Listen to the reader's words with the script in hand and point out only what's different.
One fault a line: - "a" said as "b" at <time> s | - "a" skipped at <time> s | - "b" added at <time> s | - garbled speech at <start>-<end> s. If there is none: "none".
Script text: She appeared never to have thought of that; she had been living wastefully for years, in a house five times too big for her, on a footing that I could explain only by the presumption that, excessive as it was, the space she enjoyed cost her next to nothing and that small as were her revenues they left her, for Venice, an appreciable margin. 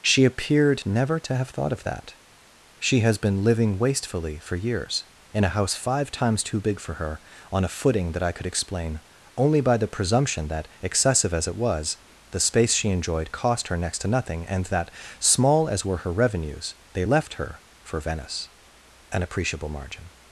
- "had" said as "has" at 3.0 s